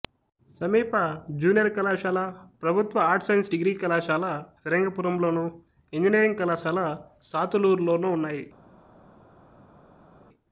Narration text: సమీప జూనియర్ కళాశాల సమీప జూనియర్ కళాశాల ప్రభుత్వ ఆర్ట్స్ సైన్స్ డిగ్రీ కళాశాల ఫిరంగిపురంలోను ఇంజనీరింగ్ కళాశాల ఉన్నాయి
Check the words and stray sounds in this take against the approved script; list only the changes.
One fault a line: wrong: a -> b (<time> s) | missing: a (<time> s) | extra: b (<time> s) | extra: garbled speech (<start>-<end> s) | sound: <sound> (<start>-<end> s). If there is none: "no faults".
missing: సమీప జూనియర్ కళాశాల (2.2 s)
extra: సాతులూరులోనూ (7.2 s)